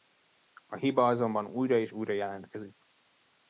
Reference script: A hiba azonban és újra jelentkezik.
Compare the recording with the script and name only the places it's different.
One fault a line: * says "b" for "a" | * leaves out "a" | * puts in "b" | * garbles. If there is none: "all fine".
* puts in "újra"